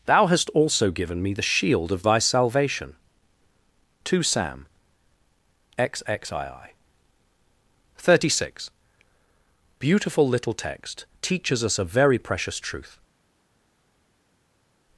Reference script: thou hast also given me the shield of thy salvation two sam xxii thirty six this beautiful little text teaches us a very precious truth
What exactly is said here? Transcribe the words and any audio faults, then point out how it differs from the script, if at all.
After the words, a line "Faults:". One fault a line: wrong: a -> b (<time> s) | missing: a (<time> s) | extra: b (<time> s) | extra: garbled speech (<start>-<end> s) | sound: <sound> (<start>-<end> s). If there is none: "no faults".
thou hast also given me the shield of thy salvation two sam xxii thirty six beautiful little text teaches us a very precious truth
Faults:
missing: this (8.7 s)